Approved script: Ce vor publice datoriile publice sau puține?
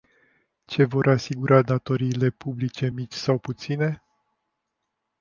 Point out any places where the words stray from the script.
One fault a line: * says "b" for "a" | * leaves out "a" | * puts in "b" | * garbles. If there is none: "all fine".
* says "asigura" for "publice"
* puts in "mici"